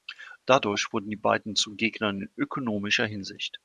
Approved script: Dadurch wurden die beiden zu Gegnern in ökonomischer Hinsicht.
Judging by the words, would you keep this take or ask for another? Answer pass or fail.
pass